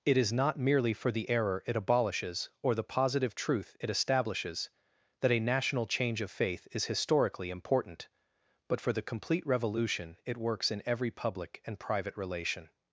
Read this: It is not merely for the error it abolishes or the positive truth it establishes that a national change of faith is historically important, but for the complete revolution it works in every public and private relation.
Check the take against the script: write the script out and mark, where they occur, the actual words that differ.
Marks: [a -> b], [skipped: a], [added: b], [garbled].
It is not merely for the error it abolishes or the positive truth it establishes that a national change of faith is historically important, but for the complete revolution it works in every public and private relation.